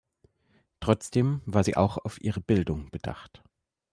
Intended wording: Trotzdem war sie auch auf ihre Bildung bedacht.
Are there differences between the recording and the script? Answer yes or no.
no